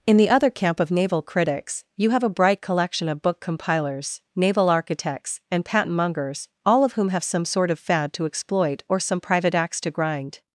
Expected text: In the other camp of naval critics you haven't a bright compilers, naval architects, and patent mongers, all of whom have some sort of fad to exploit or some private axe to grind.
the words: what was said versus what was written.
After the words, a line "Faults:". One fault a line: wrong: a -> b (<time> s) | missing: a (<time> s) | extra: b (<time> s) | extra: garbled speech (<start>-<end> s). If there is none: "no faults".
In the other camp of naval critics you have a bright collection of book compilers, naval architects, and patent mongers, all of whom have some sort of fad to exploit or some private axe to grind.
Faults:
wrong: haven't -> have (2.1 s)
extra: collection of book (2.6 s)